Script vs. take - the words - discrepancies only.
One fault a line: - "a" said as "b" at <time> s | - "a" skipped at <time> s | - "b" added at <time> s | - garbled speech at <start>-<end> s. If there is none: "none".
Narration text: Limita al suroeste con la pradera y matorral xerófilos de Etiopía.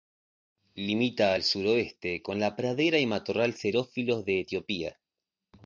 none